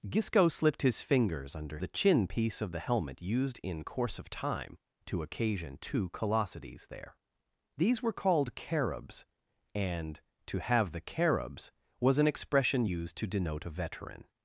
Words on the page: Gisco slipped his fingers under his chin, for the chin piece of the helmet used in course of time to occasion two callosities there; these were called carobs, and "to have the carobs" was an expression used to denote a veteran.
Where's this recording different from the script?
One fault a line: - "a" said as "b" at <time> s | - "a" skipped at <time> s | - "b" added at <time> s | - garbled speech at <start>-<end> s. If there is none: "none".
- "his chin for" skipped at 1.8 s